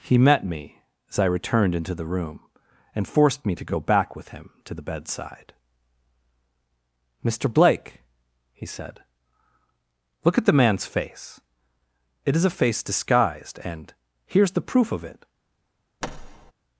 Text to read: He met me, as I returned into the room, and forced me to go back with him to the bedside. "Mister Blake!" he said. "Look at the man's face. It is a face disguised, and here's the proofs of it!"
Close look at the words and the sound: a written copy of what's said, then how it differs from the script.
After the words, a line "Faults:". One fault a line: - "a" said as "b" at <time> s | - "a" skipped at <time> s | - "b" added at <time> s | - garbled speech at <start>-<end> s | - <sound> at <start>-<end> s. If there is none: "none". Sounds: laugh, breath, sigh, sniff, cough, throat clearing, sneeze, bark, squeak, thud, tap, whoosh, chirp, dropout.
He met me, as I returned into the room, and forced me to go back with him to the bedside. "Mister Blake!" he said. "Look at the man's face. It is a face disguised, and here's the proof of it!"
Faults:
- "proofs" said as "proof" at 14.7 s
- thud at 16.0-16.5 s